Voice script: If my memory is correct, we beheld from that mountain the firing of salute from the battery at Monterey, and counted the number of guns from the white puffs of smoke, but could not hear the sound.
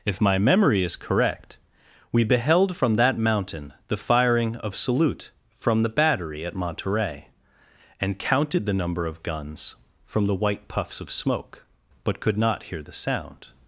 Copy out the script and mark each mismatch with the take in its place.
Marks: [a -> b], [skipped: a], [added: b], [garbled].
If my memory is correct, we beheld from that mountain the firing of salute from the battery at Monterey, and counted the number of guns from the white puffs of smoke, but could not hear the sound.